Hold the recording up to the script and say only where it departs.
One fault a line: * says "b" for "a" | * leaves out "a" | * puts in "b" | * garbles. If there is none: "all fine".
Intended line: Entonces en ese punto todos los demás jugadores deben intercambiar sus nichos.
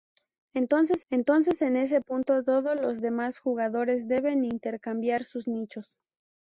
* puts in "entonces"